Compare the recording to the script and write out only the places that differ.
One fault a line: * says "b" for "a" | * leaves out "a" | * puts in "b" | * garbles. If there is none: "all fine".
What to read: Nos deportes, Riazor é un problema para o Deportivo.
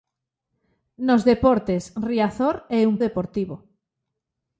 * leaves out "problema para"